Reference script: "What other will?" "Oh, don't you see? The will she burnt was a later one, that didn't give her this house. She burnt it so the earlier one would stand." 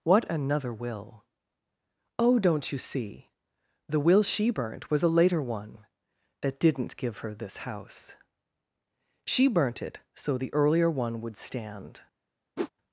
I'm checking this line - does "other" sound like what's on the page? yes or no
no